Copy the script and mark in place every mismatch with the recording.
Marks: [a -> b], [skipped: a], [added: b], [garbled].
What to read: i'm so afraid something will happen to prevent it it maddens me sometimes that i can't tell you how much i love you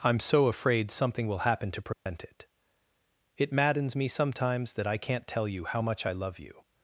i'm so afraid something will happen to prevent it it maddens me sometimes that i can't tell you how much i love you